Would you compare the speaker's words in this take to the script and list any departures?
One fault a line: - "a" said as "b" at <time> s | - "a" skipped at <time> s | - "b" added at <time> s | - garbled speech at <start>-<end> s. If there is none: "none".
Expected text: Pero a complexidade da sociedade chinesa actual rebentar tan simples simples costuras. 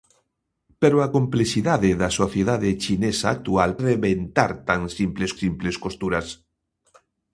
none